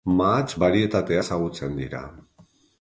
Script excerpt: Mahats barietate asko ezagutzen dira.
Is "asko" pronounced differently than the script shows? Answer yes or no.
yes